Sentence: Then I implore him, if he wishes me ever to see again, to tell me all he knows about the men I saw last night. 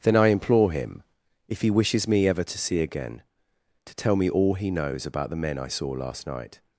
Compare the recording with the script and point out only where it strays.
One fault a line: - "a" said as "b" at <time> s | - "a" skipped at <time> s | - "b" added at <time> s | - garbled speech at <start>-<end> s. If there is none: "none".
none